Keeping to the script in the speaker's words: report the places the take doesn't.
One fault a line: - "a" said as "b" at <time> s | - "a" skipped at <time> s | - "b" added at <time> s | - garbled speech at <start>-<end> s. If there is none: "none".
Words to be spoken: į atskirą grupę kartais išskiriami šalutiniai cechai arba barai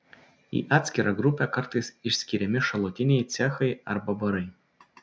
none